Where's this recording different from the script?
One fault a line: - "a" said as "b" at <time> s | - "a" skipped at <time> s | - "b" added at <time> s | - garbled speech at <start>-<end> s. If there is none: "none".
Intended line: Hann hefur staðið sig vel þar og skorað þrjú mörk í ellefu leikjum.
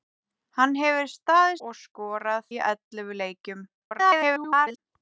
- "sig vel þar" skipped at 1.6 s
- "þrjú mörk" skipped at 2.5 s
- garbled speech at 3.7-4.8 s